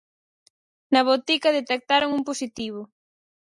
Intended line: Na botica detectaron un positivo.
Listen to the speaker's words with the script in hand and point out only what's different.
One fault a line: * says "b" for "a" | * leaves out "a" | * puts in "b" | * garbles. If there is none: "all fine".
all fine